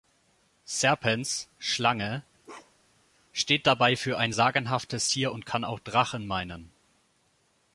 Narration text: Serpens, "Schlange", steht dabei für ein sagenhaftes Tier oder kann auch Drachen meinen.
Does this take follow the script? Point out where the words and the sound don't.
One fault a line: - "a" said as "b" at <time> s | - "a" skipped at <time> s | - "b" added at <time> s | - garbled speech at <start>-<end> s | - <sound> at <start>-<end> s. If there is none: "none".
- bark at 2.4-3.0 s
- "oder" said as "und" at 5.3 s